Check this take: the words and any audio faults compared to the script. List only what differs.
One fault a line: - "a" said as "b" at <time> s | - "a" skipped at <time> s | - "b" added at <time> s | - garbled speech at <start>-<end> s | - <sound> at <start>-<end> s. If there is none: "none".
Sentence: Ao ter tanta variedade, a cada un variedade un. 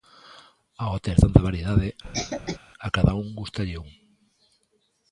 - cough at 2.0-2.6 s
- "variedade" said as "gústalle" at 3.4 s